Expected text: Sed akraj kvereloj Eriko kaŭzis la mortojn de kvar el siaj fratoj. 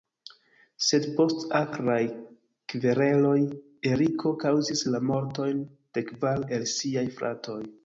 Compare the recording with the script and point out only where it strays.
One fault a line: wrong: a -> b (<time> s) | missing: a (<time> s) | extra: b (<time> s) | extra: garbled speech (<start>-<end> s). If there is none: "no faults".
extra: post (1.2 s)